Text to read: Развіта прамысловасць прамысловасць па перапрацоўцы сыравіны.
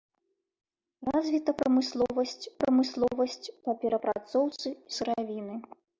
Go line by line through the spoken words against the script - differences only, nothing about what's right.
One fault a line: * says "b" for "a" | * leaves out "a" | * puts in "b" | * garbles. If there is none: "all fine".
all fine